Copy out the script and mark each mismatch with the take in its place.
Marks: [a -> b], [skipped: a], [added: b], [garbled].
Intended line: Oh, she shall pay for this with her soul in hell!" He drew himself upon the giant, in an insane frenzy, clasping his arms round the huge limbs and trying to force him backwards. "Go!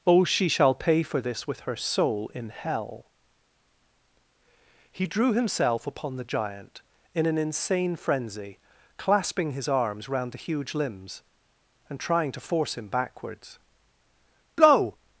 Oh, she shall pay for this with her soul in hell!" He drew himself upon the giant, in an insane frenzy, clasping his arms round the huge limbs and trying to force him backwards. "Go!